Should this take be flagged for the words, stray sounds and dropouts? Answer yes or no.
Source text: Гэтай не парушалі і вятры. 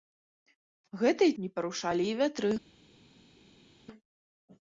no